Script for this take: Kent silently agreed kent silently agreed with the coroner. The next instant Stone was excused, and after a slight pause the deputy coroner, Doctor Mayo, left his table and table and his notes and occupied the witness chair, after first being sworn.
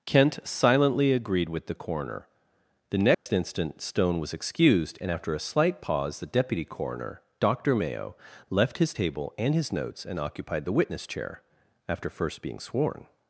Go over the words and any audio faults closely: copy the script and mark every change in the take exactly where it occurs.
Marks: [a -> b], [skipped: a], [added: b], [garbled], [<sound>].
Kent silently agreed [skipped: kent silently agreed] with the coroner. The next [dropout] instant Stone was excused, and after a slight pause the deputy coroner, Doctor Mayo, left his table and [skipped: table and] his notes and occupied the witness chair, after first being sworn.